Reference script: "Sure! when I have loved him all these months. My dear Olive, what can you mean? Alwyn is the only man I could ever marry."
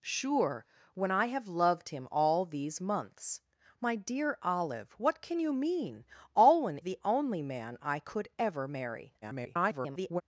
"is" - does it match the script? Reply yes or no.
no